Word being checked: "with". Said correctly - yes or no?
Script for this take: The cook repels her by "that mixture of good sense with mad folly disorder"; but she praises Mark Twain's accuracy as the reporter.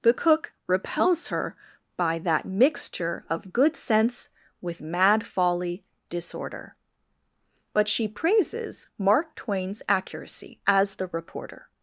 yes